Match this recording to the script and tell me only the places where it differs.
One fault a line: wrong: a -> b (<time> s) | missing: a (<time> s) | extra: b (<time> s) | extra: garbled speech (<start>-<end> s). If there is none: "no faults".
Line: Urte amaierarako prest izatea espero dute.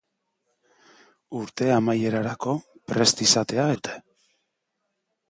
missing: espero (3.7 s)